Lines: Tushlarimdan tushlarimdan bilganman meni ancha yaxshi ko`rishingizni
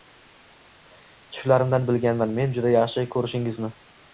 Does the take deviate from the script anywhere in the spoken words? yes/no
yes